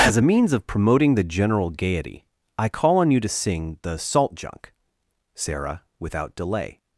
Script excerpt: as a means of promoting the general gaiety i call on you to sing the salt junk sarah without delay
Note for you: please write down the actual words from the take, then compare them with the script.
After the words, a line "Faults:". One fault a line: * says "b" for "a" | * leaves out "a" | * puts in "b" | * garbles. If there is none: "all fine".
as a means of promoting the general gaiety i call on you to sing the salt junk sarah without delay
Faults:
all fine